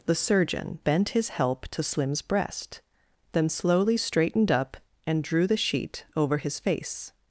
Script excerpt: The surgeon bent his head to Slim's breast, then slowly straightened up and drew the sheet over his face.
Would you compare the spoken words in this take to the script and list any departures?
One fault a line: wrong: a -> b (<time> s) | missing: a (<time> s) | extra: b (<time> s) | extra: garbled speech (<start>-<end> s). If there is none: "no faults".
wrong: head -> help (1.3 s)